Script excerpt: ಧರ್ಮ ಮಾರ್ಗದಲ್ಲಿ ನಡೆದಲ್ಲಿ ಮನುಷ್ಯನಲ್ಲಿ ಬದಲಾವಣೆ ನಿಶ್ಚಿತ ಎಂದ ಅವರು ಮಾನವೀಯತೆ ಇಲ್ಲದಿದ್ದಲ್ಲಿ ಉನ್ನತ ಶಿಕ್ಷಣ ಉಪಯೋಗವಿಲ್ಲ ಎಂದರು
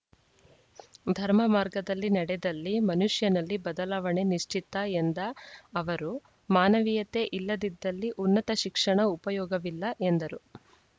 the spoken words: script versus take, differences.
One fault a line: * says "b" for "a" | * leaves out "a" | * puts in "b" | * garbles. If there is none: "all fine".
all fine